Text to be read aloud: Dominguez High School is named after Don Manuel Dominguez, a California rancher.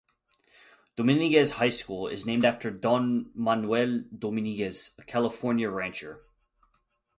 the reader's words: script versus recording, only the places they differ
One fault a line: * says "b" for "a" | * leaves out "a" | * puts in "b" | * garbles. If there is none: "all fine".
all fine